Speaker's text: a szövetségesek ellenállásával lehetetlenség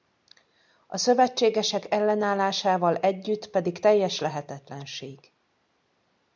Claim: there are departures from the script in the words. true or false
true